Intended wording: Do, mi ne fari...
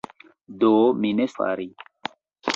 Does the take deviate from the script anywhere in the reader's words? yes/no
no